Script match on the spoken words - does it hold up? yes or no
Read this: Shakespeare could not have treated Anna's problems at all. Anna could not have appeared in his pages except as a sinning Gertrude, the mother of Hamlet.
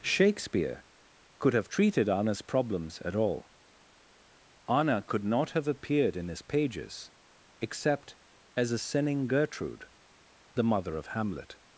no